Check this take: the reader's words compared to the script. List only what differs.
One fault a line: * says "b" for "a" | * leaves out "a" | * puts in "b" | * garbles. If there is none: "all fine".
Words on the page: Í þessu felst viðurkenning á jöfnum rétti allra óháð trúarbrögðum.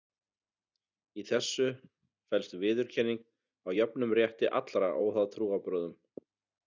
all fine